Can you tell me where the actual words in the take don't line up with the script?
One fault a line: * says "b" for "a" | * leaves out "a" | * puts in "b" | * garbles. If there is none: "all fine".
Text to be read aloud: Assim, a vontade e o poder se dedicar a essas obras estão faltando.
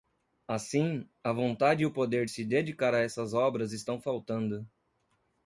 all fine